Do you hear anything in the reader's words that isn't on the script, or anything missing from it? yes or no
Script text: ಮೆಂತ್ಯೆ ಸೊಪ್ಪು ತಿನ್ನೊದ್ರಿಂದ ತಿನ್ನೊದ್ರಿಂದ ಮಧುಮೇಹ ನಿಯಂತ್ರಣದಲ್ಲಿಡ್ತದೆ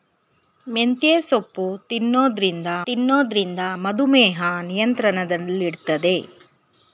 no